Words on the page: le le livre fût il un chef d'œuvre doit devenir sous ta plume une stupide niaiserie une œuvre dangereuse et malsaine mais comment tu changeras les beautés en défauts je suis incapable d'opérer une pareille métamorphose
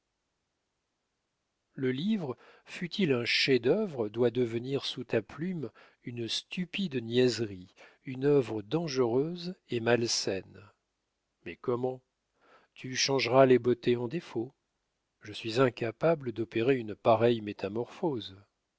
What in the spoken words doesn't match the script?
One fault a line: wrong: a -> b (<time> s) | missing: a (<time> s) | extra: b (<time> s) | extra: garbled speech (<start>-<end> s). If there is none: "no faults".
missing: le (1.9 s)